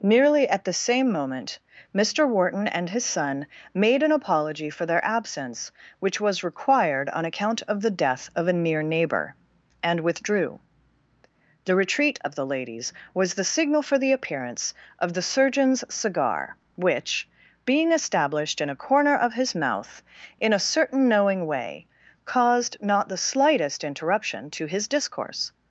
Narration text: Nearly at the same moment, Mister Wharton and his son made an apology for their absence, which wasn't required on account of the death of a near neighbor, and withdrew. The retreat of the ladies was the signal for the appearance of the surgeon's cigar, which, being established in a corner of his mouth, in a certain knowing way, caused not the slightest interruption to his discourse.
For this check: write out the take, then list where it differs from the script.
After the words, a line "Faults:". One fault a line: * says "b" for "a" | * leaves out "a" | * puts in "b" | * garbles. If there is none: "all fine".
Nearly at the same moment, Mister Wharton and his son made an apology for their absence, which was required on account of the death of a near neighbor, and withdrew. The retreat of the ladies was the signal for the appearance of the surgeon's cigar, which, being established in a corner of his mouth, in a certain knowing way, caused not the slightest interruption to his discourse.
Faults:
* says "was" for "wasn't"